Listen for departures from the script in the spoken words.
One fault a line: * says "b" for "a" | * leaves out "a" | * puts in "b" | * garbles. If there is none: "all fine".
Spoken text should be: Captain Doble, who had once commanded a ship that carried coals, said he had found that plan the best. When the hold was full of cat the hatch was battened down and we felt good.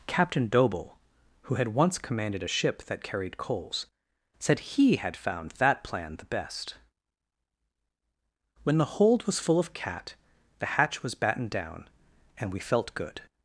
all fine